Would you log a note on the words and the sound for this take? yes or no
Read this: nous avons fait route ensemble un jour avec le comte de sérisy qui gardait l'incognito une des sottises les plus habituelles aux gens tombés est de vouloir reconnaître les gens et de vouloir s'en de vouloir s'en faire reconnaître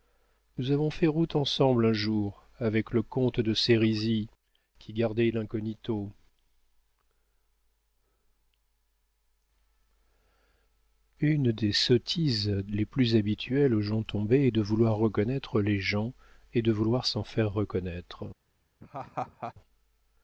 yes